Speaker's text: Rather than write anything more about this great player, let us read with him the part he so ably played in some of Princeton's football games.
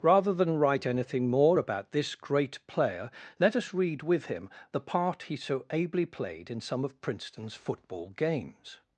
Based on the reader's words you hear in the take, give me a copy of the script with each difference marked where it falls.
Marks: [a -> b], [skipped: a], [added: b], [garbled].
Rather than write anything more about this great player, let us read with him the part he so ably played in some of Princeton's football games.